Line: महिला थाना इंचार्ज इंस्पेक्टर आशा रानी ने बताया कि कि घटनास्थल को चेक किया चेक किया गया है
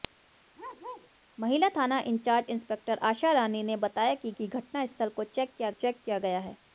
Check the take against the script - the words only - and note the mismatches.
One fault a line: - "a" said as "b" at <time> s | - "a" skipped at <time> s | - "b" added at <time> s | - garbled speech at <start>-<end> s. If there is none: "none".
none